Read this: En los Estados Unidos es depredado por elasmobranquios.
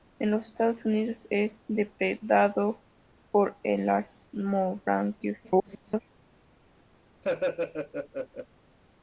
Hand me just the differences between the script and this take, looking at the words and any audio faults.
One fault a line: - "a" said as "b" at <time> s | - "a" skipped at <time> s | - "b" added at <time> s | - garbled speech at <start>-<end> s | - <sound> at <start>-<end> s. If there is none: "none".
- garbled speech at 5.4-6.0 s
- laugh at 7.2-8.5 s